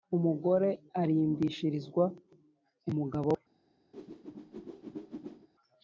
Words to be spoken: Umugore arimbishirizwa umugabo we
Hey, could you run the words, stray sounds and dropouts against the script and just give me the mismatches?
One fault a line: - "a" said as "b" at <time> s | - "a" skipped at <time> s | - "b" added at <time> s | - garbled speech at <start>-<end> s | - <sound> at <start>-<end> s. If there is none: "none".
- whoosh at 3.9-5.5 s